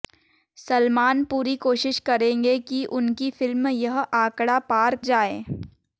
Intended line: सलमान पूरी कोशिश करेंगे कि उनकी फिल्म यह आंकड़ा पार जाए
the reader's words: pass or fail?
pass